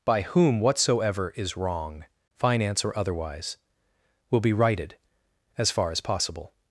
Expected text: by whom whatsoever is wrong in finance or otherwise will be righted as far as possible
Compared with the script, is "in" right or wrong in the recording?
wrong